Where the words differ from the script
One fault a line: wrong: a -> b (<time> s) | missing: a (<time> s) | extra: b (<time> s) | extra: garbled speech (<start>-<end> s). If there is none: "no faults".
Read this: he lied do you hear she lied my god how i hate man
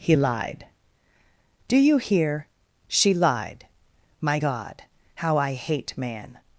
no faults